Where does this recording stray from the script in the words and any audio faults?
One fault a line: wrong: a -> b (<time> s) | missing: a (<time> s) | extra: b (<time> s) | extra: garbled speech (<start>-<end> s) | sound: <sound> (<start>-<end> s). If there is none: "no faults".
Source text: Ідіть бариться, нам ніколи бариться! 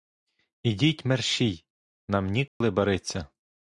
wrong: бариться -> мерщій (1.1 s)
sound: dropout (2.5-2.6 s)